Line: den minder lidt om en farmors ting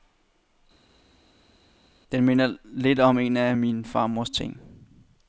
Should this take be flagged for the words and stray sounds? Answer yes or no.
yes